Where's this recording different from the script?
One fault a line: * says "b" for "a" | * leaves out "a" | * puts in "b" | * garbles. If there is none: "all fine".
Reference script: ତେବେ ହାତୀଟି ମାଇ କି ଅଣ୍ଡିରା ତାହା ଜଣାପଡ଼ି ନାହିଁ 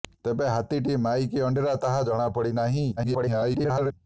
* garbles